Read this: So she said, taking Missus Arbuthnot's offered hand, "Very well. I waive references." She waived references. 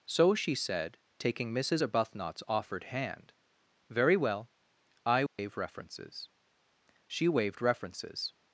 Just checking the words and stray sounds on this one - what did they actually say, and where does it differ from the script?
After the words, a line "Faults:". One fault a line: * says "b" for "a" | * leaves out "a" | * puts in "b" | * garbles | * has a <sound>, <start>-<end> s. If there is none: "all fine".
So she said, taking Missus Arbuthnot's offered hand, "Very well. I waive references." She waived references.
Faults:
* has a dropout, 5.3-5.4 s